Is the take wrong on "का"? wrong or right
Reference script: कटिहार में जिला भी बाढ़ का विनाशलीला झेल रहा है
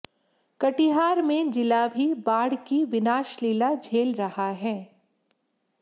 wrong